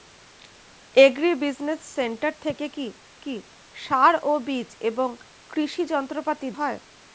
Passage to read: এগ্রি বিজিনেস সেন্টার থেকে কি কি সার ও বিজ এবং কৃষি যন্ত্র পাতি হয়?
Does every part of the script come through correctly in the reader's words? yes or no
yes